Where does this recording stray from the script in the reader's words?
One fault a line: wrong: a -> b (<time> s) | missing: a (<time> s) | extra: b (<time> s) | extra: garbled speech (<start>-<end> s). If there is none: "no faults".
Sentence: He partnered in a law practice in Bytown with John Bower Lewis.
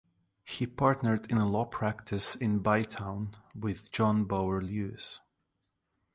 no faults